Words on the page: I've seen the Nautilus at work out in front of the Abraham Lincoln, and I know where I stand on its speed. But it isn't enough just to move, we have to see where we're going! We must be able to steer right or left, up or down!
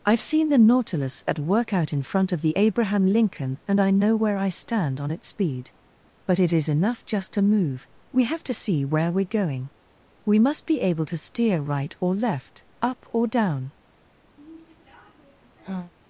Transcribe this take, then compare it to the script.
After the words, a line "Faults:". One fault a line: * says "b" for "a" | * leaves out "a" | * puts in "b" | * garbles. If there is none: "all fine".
I've seen the Nautilus at work out in front of the Abraham Lincoln, and I know where I stand on its speed. But it is enough just to move, we have to see where we're going! We must be able to steer right or left, up or down!
Faults:
* says "is" for "isn't"